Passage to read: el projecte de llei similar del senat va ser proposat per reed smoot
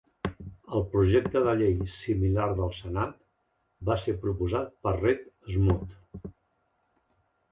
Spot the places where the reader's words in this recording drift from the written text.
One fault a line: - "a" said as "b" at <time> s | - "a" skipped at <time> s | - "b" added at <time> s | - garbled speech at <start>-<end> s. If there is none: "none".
none